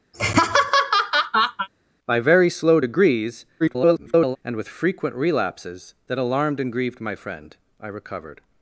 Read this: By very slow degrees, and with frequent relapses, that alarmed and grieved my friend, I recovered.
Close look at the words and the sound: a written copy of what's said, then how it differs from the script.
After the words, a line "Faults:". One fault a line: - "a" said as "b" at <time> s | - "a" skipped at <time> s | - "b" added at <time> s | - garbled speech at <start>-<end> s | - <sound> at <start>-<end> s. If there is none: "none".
By very slow degrees, [garbled] and with frequent relapses, that alarmed and grieved my friend, I recovered.
Faults:
- laugh at 0.1-1.7 s
- garbled speech at 3.6-4.4 s